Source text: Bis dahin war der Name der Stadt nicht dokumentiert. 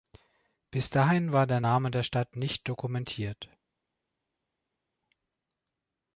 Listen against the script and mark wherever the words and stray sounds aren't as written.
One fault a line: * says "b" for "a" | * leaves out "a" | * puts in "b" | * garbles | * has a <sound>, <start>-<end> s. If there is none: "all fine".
all fine